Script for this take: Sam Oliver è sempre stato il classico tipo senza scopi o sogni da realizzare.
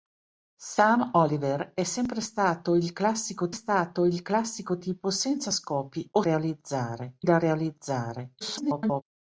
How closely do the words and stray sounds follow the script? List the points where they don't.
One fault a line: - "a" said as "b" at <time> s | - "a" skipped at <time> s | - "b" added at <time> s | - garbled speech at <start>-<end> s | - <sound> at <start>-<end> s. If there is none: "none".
- "stato il classico" added at 3.5 s
- "sogni" said as "realizzare" at 6.2 s
- garbled speech at 8.4-9.0 s